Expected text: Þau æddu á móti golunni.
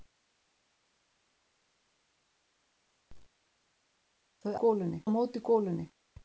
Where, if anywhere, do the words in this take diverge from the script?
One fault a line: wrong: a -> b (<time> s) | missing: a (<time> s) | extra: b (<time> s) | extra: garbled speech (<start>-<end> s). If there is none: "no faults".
wrong: æddu -> golunni (4.6 s)